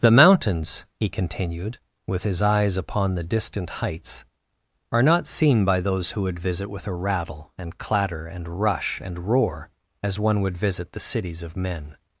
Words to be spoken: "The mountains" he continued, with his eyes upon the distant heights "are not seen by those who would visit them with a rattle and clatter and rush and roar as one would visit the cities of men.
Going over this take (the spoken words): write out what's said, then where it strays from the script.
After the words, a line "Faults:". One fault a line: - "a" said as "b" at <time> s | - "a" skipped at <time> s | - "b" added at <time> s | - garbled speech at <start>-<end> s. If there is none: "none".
"The mountains" he continued, with his eyes upon the distant heights "are not seen by those who would visit with a rattle and clatter and rush and roar as one would visit the cities of men.
Faults:
- "them" skipped at 6.7 s